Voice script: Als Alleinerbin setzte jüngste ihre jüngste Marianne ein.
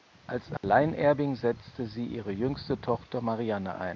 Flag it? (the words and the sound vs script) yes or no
yes